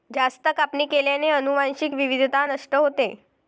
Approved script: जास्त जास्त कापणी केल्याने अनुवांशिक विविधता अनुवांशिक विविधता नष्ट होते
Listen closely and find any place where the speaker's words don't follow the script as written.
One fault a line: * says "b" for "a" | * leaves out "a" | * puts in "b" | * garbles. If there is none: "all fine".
* leaves out "जास्त"
* leaves out "अनुवांशिक विविधता"